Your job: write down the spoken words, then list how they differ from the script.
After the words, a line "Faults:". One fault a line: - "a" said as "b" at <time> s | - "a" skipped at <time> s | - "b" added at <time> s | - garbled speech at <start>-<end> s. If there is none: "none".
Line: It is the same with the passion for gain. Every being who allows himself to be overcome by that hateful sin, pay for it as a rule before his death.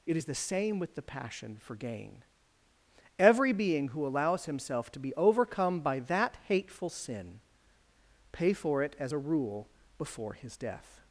It is the same with the passion for gain. Every being who allows himself to be overcome by that hateful sin, pay for it as a rule before his death.
Faults:
none